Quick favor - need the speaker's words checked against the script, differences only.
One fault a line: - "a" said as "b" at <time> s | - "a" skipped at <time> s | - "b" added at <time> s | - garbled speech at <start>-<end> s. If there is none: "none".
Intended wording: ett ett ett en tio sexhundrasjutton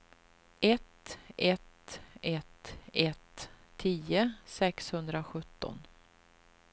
- "en" said as "ett" at 2.9 s